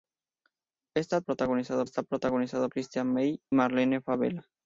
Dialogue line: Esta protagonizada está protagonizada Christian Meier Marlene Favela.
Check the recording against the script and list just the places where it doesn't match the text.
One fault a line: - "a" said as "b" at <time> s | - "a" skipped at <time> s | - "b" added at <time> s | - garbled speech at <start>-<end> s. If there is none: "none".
none